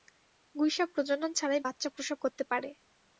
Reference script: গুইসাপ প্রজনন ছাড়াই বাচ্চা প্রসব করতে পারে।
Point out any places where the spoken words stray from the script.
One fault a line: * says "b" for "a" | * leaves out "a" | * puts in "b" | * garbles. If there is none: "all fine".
all fine